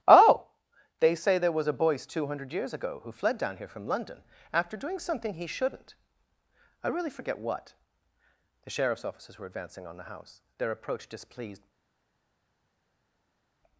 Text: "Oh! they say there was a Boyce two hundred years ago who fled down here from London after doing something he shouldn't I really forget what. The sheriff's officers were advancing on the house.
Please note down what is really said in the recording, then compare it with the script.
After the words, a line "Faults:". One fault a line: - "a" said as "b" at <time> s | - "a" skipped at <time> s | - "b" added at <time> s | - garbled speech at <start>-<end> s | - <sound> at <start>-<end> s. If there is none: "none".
"Oh! they say there was a Boyce two hundred years ago who fled down here from London after doing something he shouldn't I really forget what. The sheriff's officers were advancing on the house. Their approach displeased
Faults:
- "Their approach displeased" added at 10.6 s